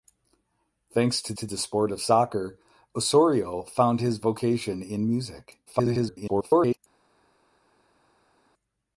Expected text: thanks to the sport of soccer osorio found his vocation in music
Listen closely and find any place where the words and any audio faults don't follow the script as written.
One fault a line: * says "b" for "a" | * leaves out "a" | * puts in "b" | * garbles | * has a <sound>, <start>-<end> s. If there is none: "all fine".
* puts in "to"
* garbles